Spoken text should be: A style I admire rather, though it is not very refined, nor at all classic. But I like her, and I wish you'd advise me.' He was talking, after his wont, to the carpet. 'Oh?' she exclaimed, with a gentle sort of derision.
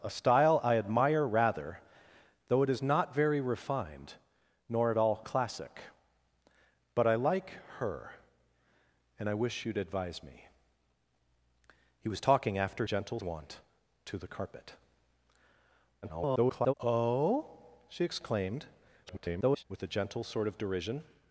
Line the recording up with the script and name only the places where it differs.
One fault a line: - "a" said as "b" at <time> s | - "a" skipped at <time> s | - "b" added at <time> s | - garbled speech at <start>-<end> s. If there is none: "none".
- "his" said as "gentle" at 12.9 s
- garbled speech at 16.0-16.7 s
- garbled speech at 19.1-19.6 s